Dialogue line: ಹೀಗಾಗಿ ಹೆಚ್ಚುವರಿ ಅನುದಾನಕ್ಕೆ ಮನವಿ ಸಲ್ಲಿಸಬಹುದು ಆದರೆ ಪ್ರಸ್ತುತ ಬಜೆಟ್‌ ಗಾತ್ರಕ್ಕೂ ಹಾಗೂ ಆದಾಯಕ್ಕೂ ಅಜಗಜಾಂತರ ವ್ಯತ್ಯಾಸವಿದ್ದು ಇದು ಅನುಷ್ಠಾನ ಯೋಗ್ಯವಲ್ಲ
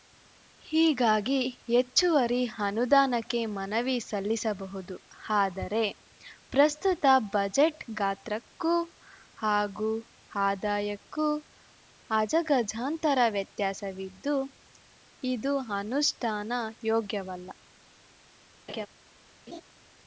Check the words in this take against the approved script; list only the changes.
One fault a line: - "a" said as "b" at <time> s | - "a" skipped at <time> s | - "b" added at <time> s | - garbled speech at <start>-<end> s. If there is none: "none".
none